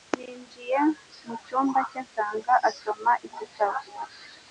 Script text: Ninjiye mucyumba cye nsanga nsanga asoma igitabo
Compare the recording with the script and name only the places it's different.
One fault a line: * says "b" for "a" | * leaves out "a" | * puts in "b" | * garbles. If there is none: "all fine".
* leaves out "nsanga"